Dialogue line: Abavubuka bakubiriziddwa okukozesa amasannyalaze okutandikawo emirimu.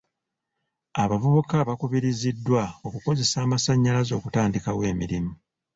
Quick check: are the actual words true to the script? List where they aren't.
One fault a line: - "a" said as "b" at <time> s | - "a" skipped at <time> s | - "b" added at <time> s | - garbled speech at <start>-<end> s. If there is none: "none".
none